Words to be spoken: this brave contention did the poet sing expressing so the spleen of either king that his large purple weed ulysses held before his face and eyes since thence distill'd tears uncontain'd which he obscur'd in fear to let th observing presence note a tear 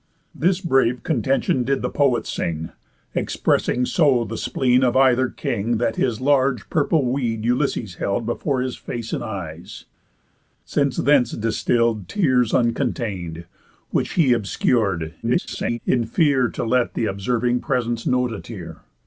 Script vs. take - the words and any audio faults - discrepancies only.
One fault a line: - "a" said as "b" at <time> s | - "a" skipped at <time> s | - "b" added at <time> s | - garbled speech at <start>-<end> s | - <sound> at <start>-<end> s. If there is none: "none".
- garbled speech at 15.2-15.8 s